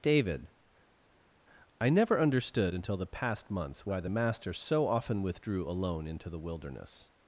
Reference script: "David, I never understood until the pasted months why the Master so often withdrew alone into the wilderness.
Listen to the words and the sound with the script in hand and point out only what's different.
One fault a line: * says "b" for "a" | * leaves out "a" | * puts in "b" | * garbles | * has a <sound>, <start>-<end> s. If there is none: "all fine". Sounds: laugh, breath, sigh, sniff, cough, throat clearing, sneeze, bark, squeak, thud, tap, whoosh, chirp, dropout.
* says "past" for "pasted"